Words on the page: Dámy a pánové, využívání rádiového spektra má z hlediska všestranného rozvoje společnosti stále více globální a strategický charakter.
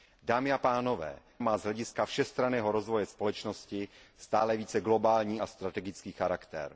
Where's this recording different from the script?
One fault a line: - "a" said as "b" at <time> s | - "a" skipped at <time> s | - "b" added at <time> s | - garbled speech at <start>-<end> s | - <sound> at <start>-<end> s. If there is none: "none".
- "využívání rádiového spektra" skipped at 1.2 s